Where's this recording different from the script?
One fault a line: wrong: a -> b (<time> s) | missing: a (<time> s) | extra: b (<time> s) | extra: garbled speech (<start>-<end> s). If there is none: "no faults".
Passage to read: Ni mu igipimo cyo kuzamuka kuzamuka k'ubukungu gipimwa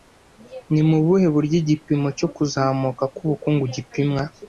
extra: buhe buryo (1.1 s)
missing: kuzamuka (3.0 s)